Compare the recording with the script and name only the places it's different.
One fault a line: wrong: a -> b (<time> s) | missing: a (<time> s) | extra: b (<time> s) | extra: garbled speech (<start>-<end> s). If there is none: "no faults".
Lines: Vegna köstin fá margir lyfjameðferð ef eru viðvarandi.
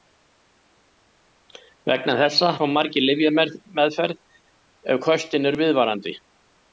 wrong: köstin -> þessa (2.2 s)
extra: köstin (5.1 s)